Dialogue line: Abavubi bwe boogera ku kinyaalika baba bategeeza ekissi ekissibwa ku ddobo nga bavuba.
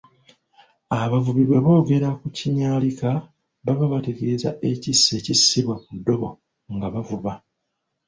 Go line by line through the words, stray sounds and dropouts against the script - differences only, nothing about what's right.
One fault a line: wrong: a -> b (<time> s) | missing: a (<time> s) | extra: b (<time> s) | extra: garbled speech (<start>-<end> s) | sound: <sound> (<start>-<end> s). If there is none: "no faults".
no faults